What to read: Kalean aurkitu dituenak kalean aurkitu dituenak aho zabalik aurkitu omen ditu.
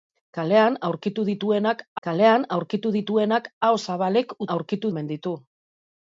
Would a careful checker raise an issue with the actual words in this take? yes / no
no